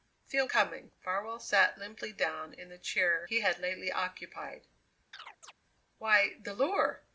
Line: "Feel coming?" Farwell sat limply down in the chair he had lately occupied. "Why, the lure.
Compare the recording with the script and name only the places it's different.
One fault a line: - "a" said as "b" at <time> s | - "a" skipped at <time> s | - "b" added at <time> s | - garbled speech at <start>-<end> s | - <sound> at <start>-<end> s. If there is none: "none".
- chirp at 5.1-5.5 s